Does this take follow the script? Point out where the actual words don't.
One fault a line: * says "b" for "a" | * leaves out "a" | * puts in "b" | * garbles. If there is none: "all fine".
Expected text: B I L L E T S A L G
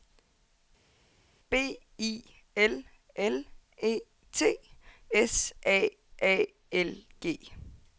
* puts in "A"